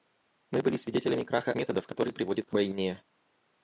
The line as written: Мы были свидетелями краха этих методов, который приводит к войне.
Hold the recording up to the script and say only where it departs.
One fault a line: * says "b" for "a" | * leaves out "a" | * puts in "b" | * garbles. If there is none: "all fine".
* leaves out "этих"